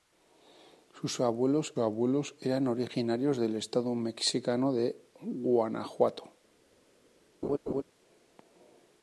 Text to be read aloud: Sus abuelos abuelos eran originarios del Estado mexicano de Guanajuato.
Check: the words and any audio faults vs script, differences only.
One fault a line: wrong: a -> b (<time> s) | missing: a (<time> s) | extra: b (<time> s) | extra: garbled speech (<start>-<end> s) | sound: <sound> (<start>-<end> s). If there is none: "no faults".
sound: laugh (7.4-7.8 s)